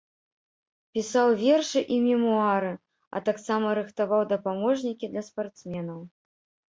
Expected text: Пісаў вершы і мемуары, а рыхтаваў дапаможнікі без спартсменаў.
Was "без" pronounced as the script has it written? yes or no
no